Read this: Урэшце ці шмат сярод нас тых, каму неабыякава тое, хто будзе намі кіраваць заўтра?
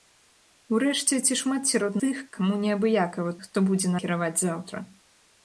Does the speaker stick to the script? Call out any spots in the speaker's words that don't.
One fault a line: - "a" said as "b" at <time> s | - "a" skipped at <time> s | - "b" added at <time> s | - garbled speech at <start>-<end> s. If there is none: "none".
- "нас" skipped at 2.0 s
- "тое" skipped at 3.4 s
- "намі" skipped at 4.0 s